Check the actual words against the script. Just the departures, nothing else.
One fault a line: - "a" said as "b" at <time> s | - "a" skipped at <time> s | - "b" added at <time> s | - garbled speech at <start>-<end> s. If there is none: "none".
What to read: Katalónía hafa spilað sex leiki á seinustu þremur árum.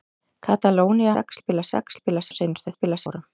- "hafa" said as "sex" at 1.1 s
- "leiki" said as "spilað" at 2.0 s
- "þremur" said as "spilað" at 2.7 s